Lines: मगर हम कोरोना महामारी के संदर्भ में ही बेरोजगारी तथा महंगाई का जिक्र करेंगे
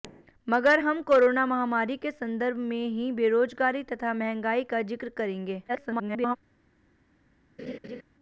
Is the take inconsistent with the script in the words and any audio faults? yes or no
yes